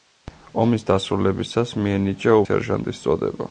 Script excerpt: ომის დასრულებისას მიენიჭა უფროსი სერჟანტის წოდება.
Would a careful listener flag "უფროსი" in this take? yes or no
yes